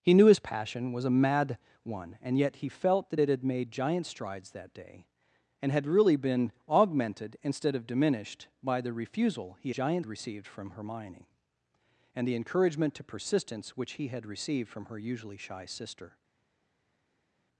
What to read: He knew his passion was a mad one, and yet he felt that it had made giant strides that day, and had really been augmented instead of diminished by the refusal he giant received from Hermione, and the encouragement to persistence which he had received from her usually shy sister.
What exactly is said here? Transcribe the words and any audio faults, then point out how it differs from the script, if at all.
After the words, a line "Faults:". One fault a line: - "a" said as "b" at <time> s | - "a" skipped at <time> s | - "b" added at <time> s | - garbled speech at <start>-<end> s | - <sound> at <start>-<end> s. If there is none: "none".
He knew his passion was a mad one, and yet he felt that it had made giant strides that day, and had really been augmented instead of diminished by the refusal he giant received from Hermione, and the encouragement to persistence which he had received from her usually shy sister.
Faults:
none